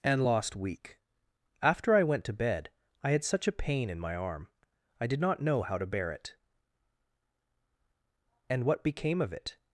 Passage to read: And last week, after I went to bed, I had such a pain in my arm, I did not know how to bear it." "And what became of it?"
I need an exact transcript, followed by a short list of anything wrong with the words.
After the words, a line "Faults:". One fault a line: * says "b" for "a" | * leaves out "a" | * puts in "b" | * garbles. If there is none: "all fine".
And lost week, after I went to bed, I had such a pain in my arm, I did not know how to bear it." "And what became of it?"
Faults:
* says "lost" for "last"